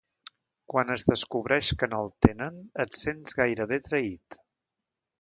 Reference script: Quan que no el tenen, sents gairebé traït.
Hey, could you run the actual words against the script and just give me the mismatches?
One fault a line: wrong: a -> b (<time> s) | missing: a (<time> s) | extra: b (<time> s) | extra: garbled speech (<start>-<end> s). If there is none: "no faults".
extra: es descobreix (0.9 s)
extra: et (2.9 s)